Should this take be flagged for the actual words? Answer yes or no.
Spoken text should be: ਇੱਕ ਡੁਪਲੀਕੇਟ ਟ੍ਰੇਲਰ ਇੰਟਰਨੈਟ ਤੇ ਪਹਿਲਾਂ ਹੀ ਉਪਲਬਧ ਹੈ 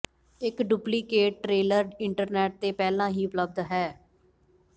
no